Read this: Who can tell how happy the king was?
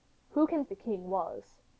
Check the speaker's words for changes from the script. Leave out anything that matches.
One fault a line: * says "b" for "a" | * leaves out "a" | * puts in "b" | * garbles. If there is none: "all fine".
* leaves out "tell how happy"